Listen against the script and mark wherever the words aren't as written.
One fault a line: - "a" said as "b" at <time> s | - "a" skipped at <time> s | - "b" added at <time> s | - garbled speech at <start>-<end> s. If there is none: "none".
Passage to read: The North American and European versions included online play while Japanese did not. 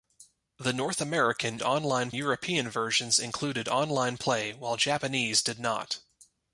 - "and" said as "online" at 1.6 s